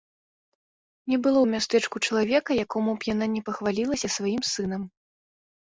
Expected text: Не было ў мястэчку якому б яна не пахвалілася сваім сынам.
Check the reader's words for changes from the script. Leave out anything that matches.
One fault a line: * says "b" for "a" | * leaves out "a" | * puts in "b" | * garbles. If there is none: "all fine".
* puts in "чалавека"